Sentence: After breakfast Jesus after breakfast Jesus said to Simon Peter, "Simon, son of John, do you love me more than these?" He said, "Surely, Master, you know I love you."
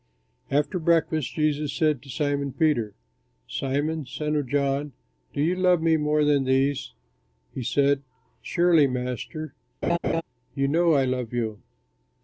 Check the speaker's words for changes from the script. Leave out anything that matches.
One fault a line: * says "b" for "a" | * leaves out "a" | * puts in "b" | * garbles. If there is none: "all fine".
* leaves out "after breakfast Jesus"